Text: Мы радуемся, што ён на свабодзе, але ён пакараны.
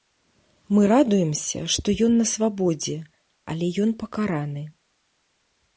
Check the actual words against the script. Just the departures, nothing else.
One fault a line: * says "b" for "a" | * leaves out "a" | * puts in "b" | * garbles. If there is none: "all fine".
all fine